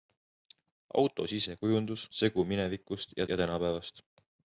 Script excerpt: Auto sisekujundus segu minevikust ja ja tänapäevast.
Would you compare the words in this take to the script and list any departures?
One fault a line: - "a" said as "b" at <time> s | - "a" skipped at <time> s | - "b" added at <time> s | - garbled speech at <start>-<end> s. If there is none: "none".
none